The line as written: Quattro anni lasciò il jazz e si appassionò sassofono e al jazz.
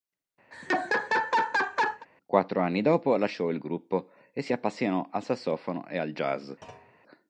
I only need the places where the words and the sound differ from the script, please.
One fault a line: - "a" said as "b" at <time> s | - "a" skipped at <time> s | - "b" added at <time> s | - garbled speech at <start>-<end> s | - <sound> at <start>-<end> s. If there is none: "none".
- laugh at 0.5-2.1 s
- "dopo" added at 2.8 s
- "jazz" said as "gruppo" at 3.6 s
- "al" added at 5.1 s
- thud at 6.6-7.0 s